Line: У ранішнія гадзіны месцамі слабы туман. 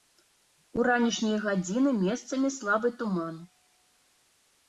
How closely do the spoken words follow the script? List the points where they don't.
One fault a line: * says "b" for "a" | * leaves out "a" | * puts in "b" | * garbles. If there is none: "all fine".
all fine